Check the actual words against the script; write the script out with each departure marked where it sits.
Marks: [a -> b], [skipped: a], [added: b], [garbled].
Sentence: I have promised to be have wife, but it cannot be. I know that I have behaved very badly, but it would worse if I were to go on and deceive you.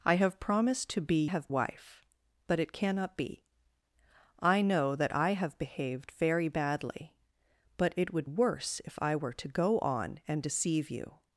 I have promised to be have wife, but it cannot be. I know that I have behaved very badly, but it would worse if I were to go on and deceive you.